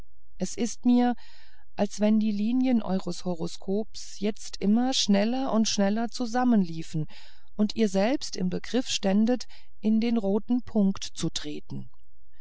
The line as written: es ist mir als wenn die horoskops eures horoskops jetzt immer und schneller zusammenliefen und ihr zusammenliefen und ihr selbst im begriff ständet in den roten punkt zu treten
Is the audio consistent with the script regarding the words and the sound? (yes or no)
no